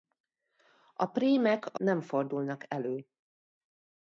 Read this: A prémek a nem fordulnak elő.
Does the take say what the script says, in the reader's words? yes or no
yes